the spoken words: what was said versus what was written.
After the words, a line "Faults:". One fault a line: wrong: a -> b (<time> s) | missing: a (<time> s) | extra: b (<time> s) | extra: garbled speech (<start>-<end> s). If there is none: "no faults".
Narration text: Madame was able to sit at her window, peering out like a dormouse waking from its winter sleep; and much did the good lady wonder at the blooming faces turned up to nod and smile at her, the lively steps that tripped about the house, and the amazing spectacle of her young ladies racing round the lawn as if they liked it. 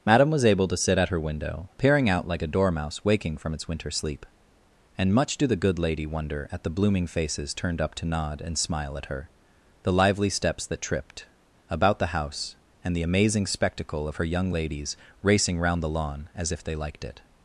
Madame was able to sit at her window, peering out like a dormouse waking from its winter sleep; and much do the good lady wonder at the blooming faces turned up to nod and smile at her, the lively steps that tripped about the house, and the amazing spectacle of her young ladies racing round the lawn as if they liked it.
Faults:
wrong: did -> do (5.4 s)